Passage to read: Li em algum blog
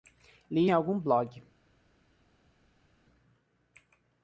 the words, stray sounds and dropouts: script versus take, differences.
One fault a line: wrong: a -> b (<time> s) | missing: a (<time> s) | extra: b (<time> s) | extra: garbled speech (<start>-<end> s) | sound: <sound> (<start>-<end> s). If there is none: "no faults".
no faults